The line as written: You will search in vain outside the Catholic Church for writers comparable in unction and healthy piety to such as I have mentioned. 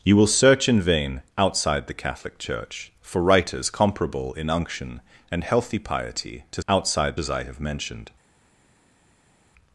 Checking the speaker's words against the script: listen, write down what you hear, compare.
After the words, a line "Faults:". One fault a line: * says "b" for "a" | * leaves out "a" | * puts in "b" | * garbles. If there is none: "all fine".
You will search in vain outside the Catholic Church for writers comparable in unction and healthy piety to outside as I have mentioned.
Faults:
* says "outside" for "such"